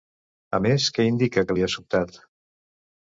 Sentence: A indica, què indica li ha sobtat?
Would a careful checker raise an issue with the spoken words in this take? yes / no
yes